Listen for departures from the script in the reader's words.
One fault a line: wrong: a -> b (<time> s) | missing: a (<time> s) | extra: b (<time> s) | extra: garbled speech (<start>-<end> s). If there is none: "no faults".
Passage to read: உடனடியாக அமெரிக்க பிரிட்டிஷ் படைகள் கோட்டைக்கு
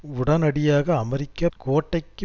missing: பிரிட்டிஷ் படைகள் (1.5 s)